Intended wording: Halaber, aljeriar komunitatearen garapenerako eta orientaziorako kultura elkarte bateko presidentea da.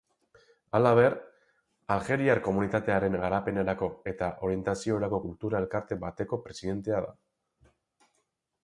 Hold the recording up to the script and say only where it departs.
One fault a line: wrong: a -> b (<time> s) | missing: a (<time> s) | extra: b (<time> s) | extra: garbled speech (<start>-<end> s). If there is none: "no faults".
no faults